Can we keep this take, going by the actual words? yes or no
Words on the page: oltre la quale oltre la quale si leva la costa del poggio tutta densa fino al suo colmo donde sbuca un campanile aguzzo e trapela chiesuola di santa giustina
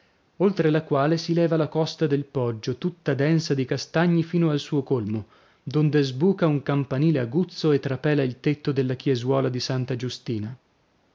no